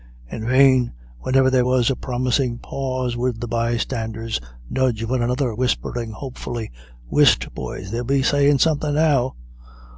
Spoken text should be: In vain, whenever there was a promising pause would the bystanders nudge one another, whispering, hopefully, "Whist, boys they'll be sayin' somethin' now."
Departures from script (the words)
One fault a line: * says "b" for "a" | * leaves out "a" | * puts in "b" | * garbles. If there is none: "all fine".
all fine